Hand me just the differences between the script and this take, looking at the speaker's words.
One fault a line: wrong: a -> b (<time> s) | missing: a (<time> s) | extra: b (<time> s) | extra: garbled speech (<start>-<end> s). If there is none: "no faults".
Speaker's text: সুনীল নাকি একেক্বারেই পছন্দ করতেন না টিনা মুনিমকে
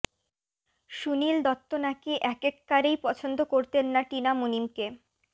extra: দত্ত (1.5 s)